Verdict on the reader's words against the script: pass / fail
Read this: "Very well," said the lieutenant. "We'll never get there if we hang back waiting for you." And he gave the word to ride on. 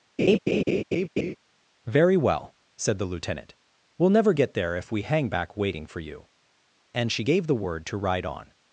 fail